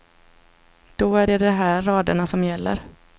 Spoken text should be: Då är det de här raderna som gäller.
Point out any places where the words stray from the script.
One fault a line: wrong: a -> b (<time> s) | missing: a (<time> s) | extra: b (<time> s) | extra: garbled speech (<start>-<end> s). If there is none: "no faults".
no faults